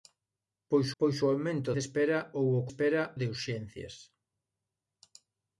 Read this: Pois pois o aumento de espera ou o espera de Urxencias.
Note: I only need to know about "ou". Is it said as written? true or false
true